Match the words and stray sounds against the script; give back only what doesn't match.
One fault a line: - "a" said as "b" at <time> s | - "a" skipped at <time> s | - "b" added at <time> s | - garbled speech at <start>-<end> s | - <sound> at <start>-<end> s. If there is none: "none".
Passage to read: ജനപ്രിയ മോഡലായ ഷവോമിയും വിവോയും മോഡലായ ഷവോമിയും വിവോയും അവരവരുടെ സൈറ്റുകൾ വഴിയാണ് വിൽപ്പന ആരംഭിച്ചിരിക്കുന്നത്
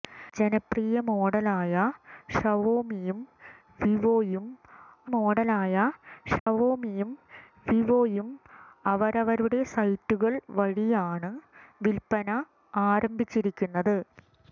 - dropout at 6.4-6.5 s